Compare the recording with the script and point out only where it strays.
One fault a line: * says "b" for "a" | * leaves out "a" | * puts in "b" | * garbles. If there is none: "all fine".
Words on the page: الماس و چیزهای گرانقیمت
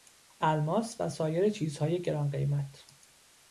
* puts in "سایر"